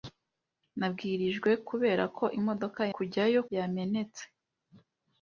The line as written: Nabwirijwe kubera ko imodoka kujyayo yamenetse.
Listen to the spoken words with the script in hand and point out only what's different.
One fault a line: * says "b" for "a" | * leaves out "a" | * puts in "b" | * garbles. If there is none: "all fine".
all fine